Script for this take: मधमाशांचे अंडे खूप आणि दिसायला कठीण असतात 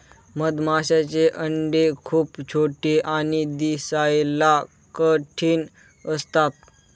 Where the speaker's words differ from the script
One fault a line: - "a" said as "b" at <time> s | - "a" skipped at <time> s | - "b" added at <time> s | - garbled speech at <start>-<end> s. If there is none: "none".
- "छोटे" added at 2.5 s